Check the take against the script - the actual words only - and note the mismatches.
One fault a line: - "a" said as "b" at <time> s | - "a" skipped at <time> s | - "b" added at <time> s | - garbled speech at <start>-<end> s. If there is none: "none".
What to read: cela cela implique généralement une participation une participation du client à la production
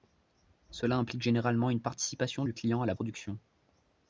- "cela" skipped at 1.0 s
- "une participation" skipped at 2.4 s